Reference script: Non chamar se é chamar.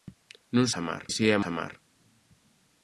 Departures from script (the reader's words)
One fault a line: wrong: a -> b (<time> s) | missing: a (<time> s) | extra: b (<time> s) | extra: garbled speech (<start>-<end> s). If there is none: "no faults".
no faults